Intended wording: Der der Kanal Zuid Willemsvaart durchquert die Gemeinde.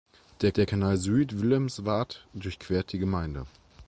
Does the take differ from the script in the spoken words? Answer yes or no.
no